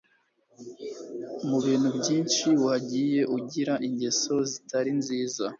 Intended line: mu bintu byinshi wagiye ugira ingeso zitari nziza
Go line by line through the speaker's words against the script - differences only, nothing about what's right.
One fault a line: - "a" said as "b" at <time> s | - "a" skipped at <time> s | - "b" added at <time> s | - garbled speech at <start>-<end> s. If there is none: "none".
none